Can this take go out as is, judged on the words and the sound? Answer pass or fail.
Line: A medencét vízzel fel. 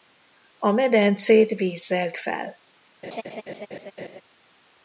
fail